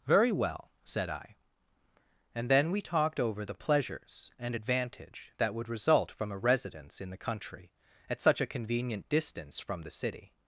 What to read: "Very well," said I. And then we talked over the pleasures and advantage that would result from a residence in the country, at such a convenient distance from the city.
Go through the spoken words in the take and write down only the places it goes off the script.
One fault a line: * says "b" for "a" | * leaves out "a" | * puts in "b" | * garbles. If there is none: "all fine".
all fine